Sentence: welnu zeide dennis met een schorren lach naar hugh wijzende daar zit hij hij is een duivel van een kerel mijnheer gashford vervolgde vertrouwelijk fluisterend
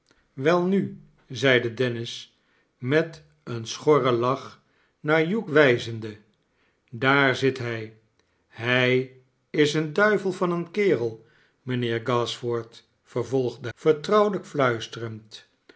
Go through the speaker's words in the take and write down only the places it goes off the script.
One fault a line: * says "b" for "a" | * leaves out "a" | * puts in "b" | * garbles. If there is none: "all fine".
all fine